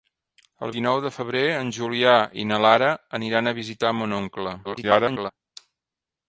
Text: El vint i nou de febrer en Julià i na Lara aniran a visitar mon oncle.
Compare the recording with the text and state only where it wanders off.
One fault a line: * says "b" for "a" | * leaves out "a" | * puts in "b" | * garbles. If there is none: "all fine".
* leaves out "vint"
* garbles